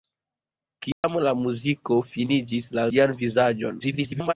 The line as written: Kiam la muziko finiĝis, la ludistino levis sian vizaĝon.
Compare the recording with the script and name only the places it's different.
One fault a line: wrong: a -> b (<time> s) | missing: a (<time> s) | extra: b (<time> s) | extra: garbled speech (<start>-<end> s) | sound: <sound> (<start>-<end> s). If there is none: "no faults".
sound: dropout (0.9-1.0 s)
missing: ludistino levis (2.9 s)
extra: garbled speech (3.8-4.3 s)